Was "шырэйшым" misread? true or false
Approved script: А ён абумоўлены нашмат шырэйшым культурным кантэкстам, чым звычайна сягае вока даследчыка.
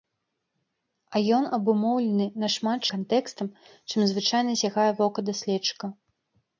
true